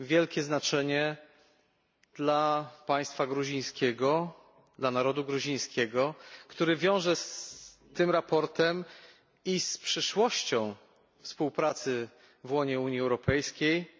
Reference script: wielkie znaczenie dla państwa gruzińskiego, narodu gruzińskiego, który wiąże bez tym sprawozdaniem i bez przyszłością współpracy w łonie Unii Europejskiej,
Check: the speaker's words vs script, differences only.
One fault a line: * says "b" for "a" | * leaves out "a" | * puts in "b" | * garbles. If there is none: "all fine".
* puts in "dla"
* says "z" for "bez"
* says "z" for "bez"